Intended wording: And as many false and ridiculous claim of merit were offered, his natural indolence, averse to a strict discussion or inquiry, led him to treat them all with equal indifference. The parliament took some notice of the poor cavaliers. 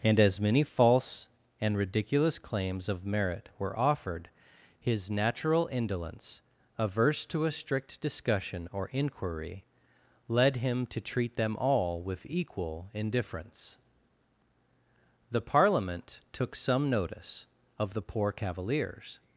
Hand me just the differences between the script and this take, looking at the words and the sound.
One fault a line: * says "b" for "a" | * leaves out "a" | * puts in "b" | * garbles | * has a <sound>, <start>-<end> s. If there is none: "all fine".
* says "claims" for "claim"